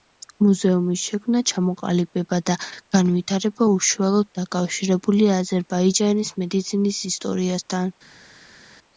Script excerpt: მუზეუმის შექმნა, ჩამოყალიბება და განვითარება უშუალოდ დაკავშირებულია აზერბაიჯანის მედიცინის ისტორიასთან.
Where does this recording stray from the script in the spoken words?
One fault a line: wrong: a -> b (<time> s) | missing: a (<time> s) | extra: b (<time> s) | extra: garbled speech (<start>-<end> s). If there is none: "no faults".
no faults